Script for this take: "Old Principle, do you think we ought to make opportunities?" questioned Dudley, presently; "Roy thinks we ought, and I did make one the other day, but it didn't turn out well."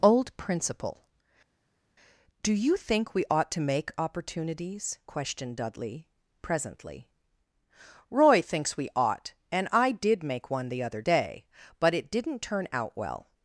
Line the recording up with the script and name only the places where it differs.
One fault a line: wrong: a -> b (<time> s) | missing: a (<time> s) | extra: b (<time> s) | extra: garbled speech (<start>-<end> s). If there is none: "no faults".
no faults